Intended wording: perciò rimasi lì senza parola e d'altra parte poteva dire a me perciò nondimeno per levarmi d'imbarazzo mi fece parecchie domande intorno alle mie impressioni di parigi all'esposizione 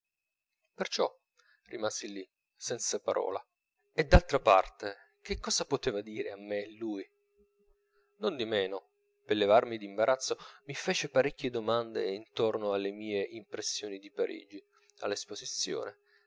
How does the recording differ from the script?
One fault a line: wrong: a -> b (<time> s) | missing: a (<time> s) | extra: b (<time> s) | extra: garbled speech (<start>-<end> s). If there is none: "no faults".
extra: che cosa (5.2 s)
wrong: perciò -> lui (6.7 s)